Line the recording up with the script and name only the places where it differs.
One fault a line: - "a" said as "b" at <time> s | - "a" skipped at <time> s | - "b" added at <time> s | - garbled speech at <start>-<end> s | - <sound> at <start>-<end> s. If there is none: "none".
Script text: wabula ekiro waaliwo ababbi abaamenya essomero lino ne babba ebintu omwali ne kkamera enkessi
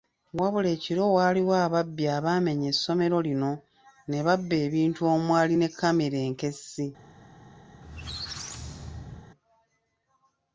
- squeak at 7.7-9.3 s